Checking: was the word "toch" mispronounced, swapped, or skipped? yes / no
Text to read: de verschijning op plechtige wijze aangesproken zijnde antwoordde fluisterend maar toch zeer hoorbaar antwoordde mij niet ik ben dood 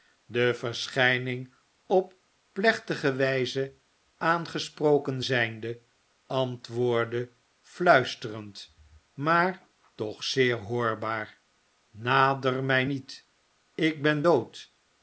no